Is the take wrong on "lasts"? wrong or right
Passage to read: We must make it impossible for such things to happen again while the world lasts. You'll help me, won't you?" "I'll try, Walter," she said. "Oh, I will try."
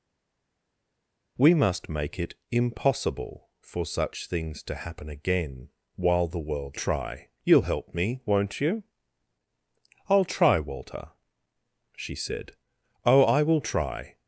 wrong